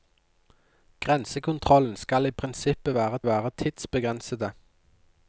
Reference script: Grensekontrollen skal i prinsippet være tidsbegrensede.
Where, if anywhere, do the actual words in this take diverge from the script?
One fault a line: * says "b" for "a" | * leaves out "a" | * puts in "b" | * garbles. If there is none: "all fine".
* puts in "være"